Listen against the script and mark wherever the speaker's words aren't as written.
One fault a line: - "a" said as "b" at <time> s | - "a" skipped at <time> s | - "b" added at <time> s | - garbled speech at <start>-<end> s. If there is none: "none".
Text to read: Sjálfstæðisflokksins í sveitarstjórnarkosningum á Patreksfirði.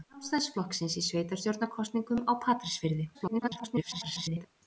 - garbled speech at 3.1-4.5 s